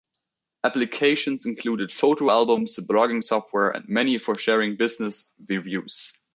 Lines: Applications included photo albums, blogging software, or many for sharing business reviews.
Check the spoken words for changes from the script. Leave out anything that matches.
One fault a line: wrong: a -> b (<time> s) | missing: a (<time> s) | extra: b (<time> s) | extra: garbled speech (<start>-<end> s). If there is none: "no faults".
wrong: or -> and (3.7 s)